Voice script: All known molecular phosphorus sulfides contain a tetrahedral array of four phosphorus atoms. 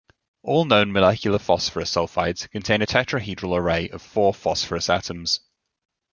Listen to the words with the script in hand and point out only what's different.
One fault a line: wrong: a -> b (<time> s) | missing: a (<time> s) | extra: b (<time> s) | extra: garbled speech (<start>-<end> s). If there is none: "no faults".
no faults